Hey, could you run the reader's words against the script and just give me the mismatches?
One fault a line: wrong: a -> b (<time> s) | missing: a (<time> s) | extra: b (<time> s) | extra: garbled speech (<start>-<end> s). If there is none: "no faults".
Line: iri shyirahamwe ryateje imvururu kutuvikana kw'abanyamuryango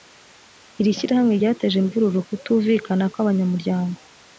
no faults